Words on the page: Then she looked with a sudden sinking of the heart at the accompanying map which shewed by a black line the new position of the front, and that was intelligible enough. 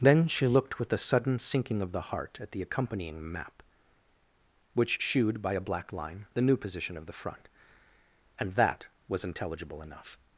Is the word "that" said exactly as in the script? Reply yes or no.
yes